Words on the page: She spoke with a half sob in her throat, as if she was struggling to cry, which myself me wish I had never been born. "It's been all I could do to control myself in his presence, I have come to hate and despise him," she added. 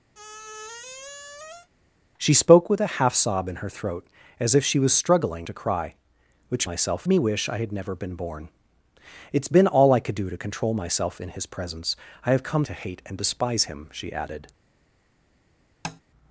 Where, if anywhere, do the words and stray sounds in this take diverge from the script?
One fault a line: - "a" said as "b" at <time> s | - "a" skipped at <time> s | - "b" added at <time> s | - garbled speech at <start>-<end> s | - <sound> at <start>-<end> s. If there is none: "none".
- squeak at 0.1-1.7 s
- tap at 15.8-16.0 s